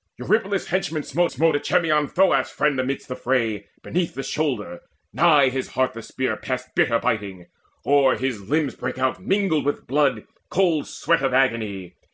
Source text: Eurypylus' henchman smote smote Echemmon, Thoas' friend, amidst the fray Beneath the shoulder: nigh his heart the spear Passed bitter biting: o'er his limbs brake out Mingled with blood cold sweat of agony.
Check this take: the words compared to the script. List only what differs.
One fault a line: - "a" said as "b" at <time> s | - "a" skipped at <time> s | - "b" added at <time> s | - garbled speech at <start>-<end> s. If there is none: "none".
none